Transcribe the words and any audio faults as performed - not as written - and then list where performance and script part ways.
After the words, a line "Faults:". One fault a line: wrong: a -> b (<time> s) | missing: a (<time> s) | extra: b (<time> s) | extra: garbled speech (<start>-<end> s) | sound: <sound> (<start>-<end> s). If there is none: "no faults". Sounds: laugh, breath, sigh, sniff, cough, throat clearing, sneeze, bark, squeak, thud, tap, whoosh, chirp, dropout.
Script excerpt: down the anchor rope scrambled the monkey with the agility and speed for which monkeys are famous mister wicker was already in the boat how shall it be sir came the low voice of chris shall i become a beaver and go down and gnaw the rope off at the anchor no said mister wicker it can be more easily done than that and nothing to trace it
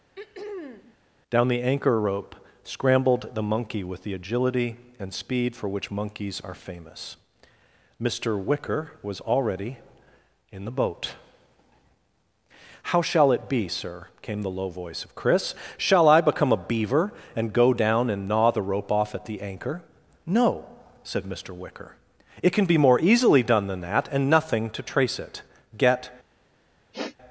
down the anchor rope scrambled the monkey with the agility and speed for which monkeys are famous mister wicker was already in the boat how shall it be sir came the low voice of chris shall i become a beaver and go down and gnaw the rope off at the anchor no said mister wicker it can be more easily done than that and nothing to trace it get
Faults:
sound: throat clearing (0.1-1.0 s)
extra: get (25.8 s)
sound: sniff (26.9-27.2 s)